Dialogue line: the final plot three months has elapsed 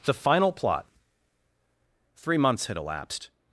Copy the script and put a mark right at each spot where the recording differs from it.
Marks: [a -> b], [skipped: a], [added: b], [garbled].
the final plot three months [has -> had] elapsed